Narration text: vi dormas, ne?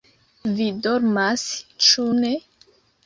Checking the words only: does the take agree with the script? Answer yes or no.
no